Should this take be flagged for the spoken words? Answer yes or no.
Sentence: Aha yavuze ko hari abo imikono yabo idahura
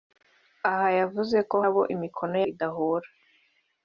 yes